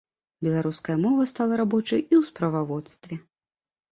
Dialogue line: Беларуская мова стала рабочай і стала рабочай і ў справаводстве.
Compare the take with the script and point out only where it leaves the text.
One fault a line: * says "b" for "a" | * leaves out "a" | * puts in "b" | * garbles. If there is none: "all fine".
* leaves out "стала рабочай і"